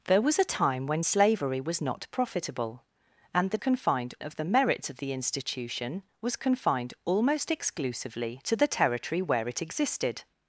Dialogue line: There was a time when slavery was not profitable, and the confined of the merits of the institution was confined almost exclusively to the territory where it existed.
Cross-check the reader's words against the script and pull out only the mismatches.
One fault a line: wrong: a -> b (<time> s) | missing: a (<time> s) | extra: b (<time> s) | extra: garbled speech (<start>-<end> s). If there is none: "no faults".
no faults